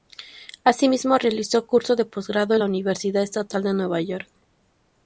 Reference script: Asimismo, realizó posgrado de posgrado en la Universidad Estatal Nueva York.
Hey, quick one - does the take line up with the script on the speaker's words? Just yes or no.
no